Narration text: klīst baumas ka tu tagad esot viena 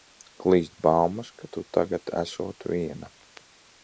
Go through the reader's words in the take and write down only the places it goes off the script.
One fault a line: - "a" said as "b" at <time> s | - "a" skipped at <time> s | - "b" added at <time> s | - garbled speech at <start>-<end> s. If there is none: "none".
none